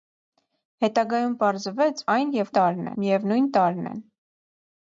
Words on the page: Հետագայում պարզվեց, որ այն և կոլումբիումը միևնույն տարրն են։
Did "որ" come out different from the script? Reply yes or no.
yes